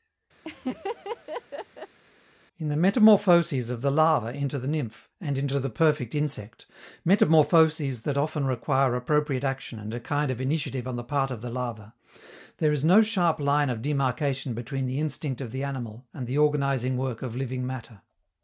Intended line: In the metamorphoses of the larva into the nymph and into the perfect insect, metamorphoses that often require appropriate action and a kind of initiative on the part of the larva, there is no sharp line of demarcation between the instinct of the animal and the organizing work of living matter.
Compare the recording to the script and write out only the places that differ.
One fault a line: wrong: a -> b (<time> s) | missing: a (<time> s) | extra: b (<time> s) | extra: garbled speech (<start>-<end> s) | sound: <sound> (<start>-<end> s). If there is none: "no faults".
sound: laugh (0.4-2.0 s)